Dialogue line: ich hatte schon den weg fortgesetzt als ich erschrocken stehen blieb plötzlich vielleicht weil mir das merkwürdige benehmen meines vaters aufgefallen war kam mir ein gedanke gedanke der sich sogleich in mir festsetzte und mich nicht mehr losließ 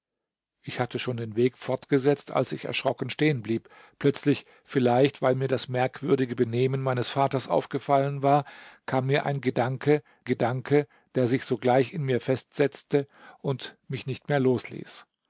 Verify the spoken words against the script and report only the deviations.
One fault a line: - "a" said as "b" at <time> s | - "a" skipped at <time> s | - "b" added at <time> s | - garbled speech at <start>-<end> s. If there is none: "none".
none